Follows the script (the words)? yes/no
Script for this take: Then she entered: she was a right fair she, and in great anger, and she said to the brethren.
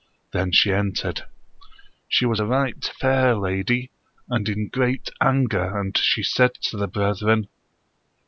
no